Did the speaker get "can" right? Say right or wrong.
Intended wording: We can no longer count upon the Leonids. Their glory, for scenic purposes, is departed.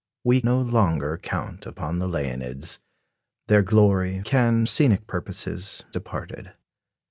wrong